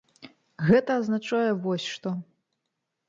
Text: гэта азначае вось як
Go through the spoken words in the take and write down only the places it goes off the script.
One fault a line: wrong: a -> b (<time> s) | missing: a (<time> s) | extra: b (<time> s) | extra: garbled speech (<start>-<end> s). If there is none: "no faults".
wrong: як -> што (1.9 s)